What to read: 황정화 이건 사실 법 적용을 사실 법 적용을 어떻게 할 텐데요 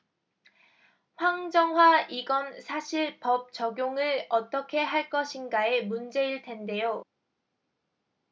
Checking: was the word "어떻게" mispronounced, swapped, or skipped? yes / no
yes